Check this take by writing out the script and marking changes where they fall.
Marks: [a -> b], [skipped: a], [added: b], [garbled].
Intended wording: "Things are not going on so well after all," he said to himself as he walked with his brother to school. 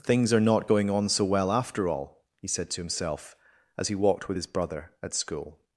"Things are not going on so well after all," he said to himself as he walked with his brother [to -> at] school.